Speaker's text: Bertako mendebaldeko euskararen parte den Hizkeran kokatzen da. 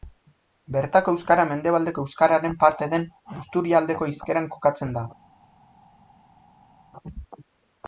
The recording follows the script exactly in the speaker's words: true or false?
false